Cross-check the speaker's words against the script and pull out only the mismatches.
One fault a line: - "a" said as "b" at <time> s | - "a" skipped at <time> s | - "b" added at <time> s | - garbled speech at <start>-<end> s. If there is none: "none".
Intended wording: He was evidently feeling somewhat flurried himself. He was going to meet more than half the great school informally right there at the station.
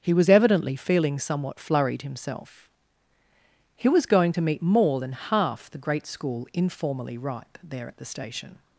- "right" said as "ripe" at 7.2 s